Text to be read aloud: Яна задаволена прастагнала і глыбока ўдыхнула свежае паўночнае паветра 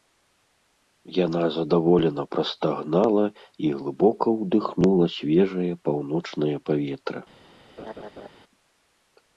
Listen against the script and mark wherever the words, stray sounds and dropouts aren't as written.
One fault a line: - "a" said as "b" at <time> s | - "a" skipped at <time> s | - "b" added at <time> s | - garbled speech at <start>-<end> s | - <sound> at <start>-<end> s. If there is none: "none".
- laugh at 7.8-8.3 s